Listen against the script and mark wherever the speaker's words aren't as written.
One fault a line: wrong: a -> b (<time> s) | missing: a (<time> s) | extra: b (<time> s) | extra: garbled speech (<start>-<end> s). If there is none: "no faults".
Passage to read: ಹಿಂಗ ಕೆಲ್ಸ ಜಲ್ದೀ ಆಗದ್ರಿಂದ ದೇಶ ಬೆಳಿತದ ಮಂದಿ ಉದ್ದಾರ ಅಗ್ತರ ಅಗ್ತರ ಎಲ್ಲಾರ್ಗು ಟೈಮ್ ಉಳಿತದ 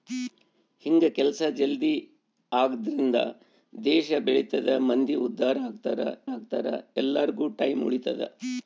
no faults